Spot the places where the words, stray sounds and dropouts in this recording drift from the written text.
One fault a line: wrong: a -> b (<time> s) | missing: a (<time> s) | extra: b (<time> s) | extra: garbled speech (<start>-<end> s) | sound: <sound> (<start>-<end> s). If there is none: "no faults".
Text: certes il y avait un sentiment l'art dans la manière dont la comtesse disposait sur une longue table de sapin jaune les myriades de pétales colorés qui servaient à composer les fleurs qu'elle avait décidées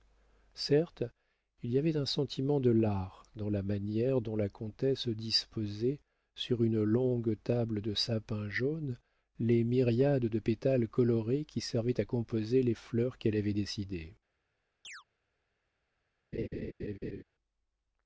extra: de (2.6 s)
sound: chirp (14.8-15.0 s)
sound: laugh (16.3-17.2 s)